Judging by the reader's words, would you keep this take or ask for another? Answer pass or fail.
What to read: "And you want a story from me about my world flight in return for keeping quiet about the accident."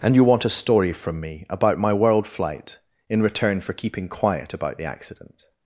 pass